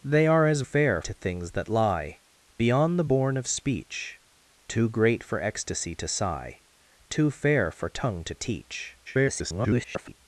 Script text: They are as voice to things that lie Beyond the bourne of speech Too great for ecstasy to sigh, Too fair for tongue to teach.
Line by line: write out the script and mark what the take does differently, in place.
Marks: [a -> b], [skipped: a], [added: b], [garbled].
They are as [voice -> fair] to things that lie Beyond the bourne of speech Too great for ecstasy to sigh, Too fair for tongue to teach. [garbled]